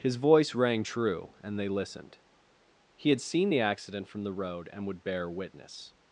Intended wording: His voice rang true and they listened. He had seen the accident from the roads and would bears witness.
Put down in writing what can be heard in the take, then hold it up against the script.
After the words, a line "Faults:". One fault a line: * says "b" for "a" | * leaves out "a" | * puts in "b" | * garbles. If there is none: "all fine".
His voice rang true and they listened. He had seen the accident from the road and would bear witness.
Faults:
* says "road" for "roads"
* says "bear" for "bears"